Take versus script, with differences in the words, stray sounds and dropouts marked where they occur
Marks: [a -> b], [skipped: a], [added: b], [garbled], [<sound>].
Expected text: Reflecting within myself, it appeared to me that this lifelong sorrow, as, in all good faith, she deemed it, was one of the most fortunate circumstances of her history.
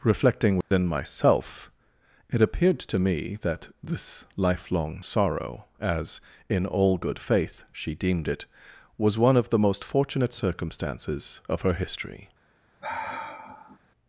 Reflecting within [dropout] myself, it appeared to me that this lifelong sorrow, as, in all good faith, she deemed it, was one of the most fortunate circumstances of her history. [sigh]